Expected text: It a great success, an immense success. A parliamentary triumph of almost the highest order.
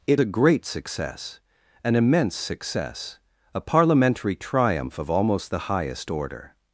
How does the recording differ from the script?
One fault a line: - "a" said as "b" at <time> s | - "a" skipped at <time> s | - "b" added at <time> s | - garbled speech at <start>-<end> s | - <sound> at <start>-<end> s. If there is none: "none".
none